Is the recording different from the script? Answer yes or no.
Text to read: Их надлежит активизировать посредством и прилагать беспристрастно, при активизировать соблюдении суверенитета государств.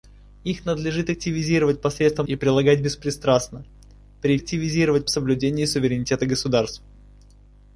no